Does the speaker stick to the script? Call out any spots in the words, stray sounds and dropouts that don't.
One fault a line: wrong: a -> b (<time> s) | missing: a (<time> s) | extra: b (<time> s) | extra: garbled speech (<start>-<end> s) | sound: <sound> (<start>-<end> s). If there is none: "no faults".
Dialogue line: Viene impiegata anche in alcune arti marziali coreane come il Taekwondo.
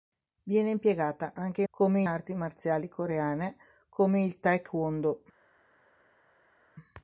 wrong: alcune -> come (1.7 s)